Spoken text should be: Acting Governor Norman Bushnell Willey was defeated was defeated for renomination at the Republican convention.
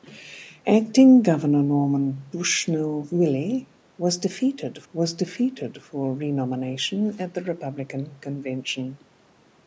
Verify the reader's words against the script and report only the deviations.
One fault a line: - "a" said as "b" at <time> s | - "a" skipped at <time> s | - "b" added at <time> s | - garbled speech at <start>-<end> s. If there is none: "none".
none